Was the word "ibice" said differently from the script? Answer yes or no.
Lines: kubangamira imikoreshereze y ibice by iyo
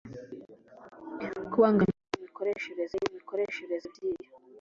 yes